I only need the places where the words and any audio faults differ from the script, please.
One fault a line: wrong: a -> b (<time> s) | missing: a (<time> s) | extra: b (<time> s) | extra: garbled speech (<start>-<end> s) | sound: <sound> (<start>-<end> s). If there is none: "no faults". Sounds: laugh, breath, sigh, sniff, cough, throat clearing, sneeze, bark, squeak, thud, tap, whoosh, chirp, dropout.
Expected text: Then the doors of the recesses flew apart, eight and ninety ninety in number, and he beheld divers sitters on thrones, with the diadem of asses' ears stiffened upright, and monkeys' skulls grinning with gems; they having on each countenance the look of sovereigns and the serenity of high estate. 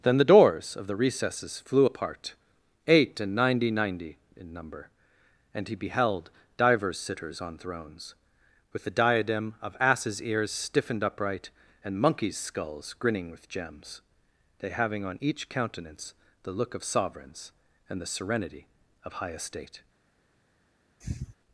sound: sniff (21.0-21.4 s)